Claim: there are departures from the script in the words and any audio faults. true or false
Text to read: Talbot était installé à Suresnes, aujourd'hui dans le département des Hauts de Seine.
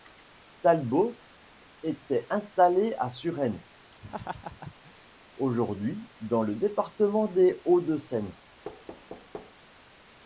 true